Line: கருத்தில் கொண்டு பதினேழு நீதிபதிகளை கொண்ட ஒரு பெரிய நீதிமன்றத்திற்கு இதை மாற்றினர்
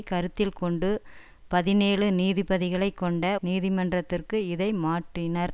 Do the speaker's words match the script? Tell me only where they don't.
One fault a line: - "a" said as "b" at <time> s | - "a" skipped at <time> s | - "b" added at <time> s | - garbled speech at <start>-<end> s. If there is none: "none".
- "ஒரு பெரிய" skipped at 3.2 s